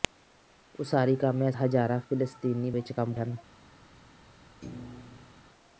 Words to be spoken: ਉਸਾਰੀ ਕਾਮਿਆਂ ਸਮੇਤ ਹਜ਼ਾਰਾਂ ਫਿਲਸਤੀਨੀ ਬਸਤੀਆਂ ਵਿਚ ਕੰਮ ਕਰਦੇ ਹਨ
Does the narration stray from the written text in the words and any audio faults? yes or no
yes